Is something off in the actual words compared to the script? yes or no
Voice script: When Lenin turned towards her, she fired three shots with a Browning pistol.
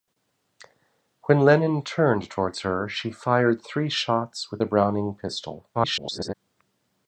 yes